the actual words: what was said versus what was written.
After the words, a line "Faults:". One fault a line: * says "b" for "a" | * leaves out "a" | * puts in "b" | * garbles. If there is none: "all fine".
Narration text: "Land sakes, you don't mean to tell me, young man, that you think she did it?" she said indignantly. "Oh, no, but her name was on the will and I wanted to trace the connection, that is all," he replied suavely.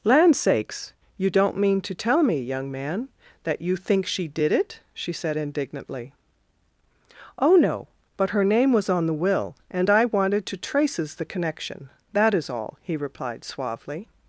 "Land sakes, you don't mean to tell me, young man, that you think she did it?" she said indignantly. "Oh, no, but her name was on the will and I wanted to traces the connection, that is all," he replied suavely.
Faults:
* says "traces" for "trace"